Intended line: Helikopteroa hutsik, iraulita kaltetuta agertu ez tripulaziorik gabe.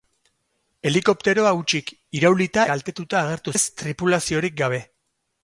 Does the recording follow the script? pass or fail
pass